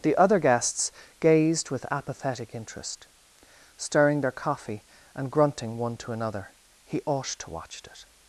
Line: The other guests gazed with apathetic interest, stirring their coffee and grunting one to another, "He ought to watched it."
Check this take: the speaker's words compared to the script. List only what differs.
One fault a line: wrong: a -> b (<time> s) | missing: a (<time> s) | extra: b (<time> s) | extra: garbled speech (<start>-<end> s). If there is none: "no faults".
wrong: watched -> watch (7.5 s)